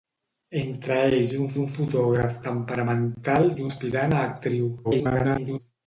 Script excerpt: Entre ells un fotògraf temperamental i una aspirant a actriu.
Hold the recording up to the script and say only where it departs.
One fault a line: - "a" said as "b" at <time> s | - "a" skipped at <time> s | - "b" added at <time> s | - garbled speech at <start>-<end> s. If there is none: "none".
- "un" added at 1.6 s
- "una" skipped at 3.7 s
- garbled speech at 4.8-5.6 s